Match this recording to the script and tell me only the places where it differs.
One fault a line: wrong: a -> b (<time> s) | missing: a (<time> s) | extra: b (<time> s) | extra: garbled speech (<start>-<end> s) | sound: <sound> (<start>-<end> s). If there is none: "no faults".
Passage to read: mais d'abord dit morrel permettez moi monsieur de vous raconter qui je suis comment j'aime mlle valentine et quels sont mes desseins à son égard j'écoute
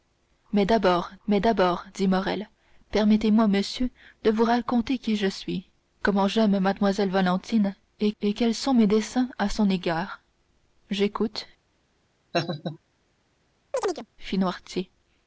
extra: mais d'abord (1.3 s)
extra: et (8.2 s)
sound: laugh (12.3-12.8 s)
sound: chirp (13.7-14.1 s)